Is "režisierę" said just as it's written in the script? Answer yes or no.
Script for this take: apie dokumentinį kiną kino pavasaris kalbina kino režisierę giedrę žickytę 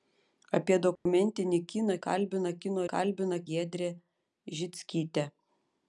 no